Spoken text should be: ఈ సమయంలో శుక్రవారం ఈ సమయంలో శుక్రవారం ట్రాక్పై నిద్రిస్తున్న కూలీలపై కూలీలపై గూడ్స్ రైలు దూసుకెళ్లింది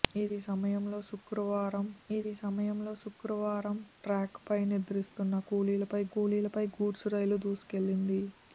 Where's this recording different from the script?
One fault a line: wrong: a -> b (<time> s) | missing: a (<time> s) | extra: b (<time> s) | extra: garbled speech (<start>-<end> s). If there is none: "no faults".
no faults